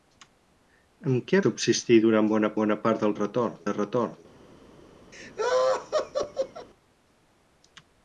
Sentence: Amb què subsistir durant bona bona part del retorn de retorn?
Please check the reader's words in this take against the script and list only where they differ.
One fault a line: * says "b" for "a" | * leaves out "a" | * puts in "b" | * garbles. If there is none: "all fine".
all fine